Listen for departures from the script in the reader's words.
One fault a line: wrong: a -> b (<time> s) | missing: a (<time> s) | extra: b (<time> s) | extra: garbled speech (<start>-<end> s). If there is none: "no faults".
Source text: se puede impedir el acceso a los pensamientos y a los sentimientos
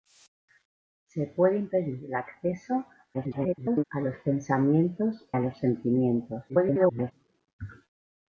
extra: garbled speech (3.1-3.8 s)
missing: y (5.3 s)
extra: garbled speech (6.5-7.1 s)